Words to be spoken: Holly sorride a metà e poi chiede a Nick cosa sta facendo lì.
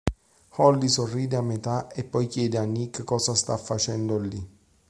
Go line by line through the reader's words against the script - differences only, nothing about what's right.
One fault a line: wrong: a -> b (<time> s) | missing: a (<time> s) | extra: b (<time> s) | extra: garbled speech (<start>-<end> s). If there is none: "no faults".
no faults